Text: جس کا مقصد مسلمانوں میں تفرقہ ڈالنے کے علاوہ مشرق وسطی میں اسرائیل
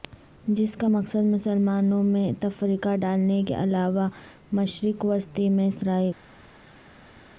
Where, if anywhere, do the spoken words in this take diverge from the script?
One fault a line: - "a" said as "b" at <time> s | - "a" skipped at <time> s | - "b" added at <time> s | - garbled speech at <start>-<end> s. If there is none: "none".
none